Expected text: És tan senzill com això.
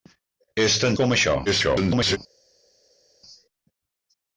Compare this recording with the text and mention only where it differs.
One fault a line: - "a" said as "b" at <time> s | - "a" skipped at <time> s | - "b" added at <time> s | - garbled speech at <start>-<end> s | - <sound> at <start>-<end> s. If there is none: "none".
- "senzill" skipped at 1.0 s
- garbled speech at 1.5-2.2 s